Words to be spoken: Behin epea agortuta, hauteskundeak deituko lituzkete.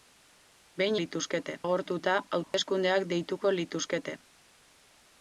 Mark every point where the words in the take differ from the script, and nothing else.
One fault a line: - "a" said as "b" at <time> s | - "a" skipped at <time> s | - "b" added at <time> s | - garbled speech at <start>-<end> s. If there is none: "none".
- "epea" said as "lituzkete" at 1.0 s